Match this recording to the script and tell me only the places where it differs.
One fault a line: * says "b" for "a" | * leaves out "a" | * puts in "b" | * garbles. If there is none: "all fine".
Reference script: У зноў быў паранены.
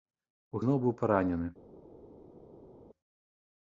all fine